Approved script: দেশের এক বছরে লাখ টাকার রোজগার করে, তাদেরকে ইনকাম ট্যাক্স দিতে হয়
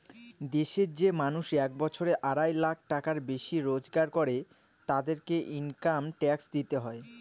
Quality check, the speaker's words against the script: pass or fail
fail